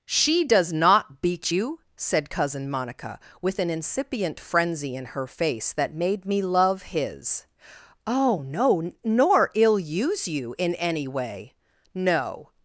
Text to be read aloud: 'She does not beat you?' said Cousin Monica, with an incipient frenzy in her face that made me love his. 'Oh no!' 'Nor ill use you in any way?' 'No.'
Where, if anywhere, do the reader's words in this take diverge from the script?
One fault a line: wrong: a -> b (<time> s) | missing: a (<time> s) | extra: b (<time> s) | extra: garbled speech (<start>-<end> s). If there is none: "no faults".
no faults